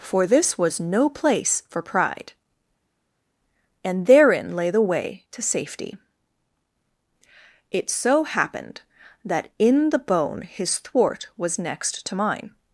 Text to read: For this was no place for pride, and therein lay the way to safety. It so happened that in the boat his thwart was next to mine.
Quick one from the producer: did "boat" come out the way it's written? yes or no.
no